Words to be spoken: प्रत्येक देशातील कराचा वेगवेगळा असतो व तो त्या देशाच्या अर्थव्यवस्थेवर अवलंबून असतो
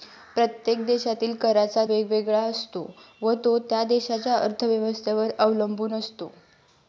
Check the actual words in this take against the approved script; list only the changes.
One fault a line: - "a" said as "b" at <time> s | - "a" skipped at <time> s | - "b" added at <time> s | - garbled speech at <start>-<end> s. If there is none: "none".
none